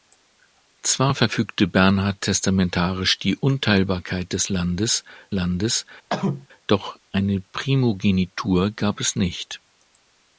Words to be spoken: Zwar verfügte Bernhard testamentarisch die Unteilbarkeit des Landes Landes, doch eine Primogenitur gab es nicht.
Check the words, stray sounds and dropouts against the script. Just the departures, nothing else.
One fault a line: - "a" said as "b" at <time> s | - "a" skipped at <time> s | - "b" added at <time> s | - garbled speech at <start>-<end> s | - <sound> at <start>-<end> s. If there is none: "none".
- cough at 6.1-6.5 s